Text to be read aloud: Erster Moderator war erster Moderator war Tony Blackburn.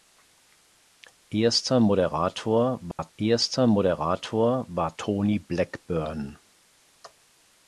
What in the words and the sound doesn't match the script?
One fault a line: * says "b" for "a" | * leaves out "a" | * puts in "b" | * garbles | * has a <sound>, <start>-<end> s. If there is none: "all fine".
* has a dropout, 2.9-3.0 s